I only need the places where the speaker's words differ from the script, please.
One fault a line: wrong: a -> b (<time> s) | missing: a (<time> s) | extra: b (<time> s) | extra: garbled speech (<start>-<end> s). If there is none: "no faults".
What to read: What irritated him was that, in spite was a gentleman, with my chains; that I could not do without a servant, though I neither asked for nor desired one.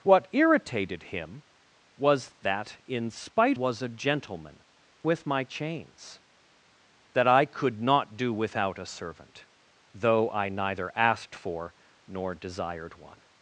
no faults